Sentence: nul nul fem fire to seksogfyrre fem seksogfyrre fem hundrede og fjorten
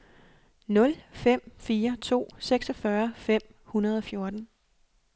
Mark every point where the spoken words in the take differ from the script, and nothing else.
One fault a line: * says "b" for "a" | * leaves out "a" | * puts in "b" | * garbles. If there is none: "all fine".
* leaves out "nul"
* leaves out "seksogfyrre fem"